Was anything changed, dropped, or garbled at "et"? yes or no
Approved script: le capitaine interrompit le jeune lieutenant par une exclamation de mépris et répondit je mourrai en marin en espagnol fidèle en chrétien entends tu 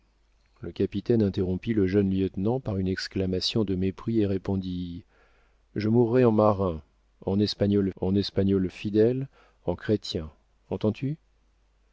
no